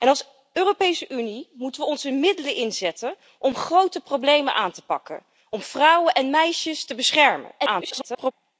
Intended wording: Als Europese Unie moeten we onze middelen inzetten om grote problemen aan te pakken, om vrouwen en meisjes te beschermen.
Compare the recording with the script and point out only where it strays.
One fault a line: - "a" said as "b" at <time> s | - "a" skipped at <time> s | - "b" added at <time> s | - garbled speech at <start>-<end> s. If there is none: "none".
- garbled speech at 7.6-8.3 s